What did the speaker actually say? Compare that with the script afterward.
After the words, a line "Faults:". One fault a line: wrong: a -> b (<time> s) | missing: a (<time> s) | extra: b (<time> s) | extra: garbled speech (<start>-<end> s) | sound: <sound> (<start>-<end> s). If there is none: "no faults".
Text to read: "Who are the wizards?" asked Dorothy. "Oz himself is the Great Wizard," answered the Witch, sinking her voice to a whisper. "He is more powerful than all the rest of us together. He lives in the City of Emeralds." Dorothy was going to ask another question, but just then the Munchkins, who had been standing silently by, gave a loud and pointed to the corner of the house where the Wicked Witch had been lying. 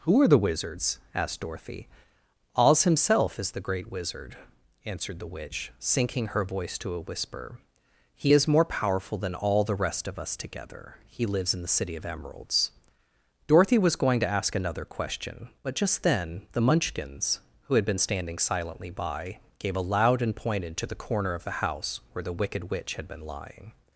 "Who are the wizards?" asked Dorothy. "Oz himself is the Great Wizard," answered the Witch, sinking her voice to a whisper. "He is more powerful than all the rest of us together. He lives in the City of Emeralds." Dorothy was going to ask another question, but just then the Munchkins, who had been standing silently by, gave a loud and pointed to the corner of the house where the Wicked Witch had been lying.
Faults:
no faults